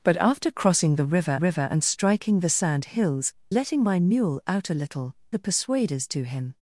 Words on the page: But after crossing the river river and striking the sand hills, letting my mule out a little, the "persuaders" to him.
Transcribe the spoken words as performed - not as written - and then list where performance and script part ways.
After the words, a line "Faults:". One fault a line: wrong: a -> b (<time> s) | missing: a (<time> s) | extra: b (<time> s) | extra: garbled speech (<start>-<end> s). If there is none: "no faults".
But after crossing the river river and striking the sand hills, letting my mule out a little, the "persuaders" to him.
Faults:
no faults